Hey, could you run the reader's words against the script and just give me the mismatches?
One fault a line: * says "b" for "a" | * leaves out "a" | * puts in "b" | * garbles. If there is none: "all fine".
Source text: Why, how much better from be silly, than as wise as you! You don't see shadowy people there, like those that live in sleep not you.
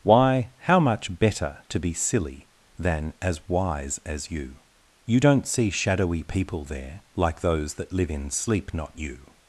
* says "to" for "from"